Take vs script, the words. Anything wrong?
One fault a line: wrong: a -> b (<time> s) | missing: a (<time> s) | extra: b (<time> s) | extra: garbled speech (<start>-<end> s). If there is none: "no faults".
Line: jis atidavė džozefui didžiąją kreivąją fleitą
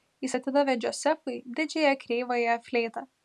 no faults